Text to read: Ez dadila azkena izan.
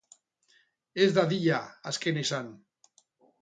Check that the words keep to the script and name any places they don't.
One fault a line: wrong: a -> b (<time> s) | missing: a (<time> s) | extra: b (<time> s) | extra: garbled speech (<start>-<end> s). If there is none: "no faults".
no faults